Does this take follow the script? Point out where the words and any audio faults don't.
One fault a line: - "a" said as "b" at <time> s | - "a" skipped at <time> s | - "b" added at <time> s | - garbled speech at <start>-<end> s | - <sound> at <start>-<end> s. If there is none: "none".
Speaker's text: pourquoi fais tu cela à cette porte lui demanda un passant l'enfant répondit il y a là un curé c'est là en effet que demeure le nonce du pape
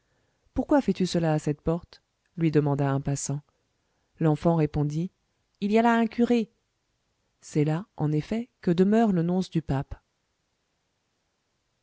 none